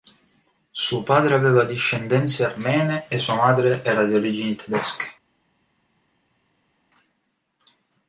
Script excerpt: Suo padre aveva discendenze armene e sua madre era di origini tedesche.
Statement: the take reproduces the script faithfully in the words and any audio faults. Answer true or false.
true